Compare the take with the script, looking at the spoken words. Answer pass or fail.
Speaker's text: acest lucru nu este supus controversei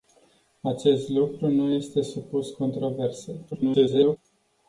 fail